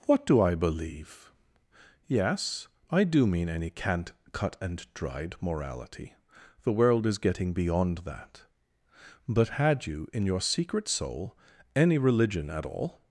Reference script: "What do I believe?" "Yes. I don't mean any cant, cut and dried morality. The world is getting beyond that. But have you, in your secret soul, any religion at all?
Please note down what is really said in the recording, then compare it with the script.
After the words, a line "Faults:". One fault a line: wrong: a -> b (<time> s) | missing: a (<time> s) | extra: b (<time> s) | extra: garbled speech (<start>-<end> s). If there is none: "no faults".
"What do I believe?" "Yes. I do mean any cant, cut and dried morality. The world is getting beyond that. But had you, in your secret soul, any religion at all?
Faults:
wrong: don't -> do (3.0 s)
wrong: have -> had (9.5 s)